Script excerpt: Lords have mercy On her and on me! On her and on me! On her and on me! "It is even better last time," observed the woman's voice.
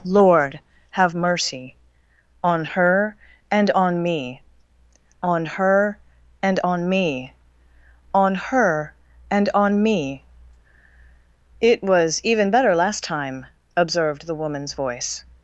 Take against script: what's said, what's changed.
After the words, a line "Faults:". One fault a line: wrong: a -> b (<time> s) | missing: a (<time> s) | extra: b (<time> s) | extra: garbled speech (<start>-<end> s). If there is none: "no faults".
Lord have mercy On her and on me! On her and on me! On her and on me! "It was even better last time," observed the woman's voice.
Faults:
wrong: Lords -> Lord (0.0 s)
wrong: is -> was (11.8 s)